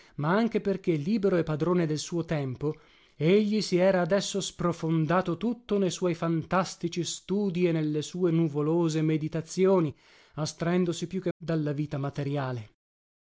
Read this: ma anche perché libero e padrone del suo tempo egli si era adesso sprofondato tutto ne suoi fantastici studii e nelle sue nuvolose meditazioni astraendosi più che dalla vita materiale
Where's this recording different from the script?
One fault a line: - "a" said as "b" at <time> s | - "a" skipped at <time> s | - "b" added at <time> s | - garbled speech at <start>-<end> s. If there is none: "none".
none